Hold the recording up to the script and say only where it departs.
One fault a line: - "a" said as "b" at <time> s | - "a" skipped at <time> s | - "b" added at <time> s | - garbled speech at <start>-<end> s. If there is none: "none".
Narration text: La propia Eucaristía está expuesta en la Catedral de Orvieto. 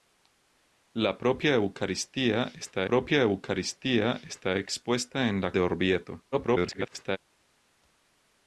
- "propia Eucaristía está" added at 2.9 s
- "Catedral" skipped at 5.5 s
- garbled speech at 6.3-7.2 s